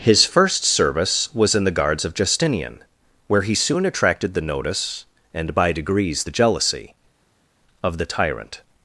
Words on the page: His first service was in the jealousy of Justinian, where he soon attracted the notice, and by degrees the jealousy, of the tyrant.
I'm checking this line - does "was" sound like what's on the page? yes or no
yes